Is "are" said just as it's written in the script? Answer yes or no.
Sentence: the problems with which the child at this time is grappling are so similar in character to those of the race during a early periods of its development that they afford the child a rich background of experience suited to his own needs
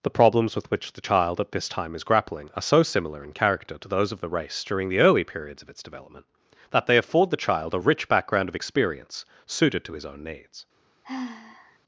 yes